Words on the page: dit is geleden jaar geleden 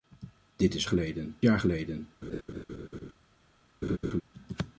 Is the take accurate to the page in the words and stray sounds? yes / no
no